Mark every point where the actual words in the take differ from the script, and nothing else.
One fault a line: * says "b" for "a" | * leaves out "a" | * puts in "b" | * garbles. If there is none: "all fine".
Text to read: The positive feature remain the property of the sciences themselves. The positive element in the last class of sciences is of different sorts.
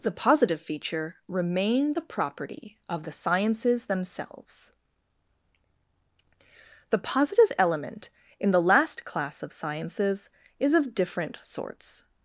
all fine